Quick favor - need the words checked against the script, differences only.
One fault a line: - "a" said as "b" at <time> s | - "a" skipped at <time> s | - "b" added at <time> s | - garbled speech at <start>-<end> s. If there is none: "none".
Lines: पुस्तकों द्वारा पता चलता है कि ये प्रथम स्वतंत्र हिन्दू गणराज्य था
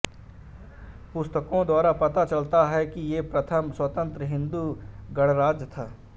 none